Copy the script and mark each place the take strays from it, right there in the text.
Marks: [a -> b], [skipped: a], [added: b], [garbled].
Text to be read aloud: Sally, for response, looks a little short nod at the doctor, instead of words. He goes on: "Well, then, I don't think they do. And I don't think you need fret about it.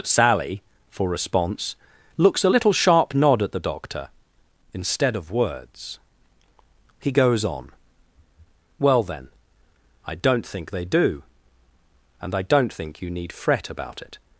Sally, for response, looks a little [short -> sharp] nod at the doctor, instead of words. He goes on: "Well, then, I don't think they do. And I don't think you need fret about it.